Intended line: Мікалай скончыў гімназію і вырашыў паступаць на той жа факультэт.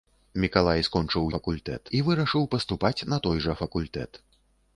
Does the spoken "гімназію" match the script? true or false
false